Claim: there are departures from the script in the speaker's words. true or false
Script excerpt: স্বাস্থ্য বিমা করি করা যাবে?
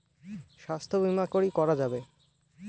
false